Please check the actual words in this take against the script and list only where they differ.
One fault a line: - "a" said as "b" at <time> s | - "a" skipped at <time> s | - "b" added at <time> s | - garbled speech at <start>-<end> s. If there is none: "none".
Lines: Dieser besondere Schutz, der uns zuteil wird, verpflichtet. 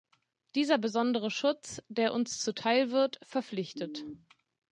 none